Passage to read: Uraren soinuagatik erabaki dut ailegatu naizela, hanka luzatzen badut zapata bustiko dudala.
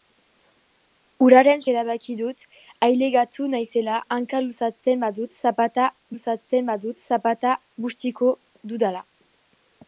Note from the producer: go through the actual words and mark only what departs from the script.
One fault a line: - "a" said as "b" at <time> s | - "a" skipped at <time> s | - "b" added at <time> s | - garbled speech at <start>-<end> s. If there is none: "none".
- "soinuagatik" skipped at 1.6 s
- "luzatzen badut zapata" added at 6.1 s